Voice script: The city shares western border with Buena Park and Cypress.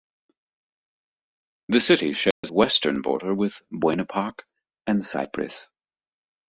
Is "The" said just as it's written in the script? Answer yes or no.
yes